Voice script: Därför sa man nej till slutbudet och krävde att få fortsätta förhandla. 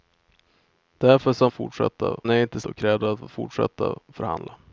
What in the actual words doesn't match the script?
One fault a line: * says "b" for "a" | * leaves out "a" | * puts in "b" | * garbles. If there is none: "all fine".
* says "fortsätta" for "man"
* leaves out "slutbudet"